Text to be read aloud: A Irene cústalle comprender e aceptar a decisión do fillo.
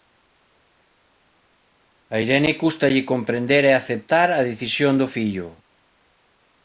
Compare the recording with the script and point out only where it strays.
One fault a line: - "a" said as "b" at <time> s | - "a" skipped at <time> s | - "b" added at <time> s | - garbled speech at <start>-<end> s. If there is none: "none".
none